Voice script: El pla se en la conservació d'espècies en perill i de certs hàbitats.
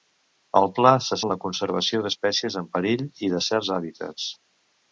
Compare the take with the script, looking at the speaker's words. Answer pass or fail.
pass